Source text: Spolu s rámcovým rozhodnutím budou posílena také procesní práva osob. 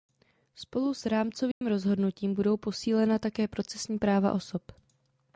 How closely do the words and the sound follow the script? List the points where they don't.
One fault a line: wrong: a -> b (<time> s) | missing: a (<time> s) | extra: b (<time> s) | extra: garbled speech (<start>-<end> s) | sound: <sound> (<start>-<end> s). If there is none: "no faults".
sound: dropout (1.5-1.6 s)